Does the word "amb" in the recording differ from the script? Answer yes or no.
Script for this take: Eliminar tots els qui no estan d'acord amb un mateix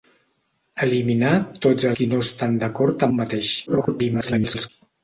yes